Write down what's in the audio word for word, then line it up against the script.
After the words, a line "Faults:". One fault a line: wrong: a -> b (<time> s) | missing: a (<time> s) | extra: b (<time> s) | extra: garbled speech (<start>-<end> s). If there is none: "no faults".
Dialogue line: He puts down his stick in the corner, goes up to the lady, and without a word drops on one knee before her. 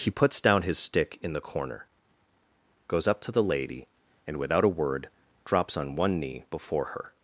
He puts down his stick in the corner, goes up to the lady, and without a word drops on one knee before her.
Faults:
no faults